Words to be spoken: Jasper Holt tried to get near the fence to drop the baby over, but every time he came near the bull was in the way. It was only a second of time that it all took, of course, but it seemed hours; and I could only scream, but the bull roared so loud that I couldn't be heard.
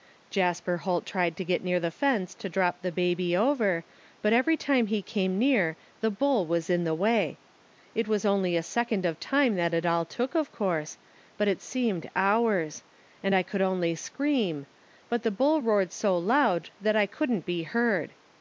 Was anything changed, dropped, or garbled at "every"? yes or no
no